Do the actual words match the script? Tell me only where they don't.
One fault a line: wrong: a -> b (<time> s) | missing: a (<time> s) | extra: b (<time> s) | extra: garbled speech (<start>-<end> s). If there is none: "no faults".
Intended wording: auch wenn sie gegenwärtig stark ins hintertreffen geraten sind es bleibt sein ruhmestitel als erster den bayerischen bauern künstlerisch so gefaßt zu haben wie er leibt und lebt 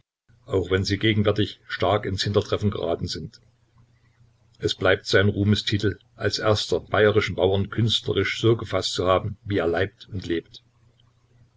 missing: den (6.8 s)